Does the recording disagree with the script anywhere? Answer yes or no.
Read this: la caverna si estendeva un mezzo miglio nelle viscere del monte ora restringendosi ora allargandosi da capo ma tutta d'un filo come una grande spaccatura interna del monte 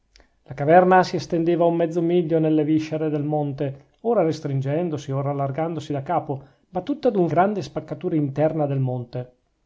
yes